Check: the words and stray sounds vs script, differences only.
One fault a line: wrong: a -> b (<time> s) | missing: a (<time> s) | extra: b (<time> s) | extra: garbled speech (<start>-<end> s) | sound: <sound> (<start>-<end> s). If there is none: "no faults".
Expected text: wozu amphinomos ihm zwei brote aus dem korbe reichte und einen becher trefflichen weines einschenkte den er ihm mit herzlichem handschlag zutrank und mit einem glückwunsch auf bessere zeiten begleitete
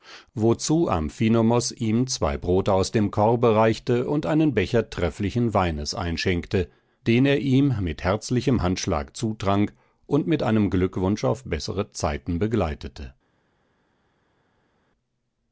no faults